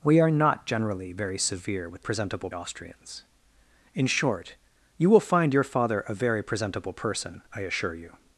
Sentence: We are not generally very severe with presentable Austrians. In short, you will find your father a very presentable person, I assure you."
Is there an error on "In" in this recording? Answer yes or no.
no